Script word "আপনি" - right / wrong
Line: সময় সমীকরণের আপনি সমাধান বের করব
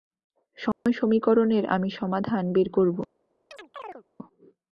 wrong